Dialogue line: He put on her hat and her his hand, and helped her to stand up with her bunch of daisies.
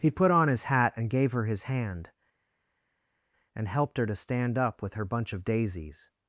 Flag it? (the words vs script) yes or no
yes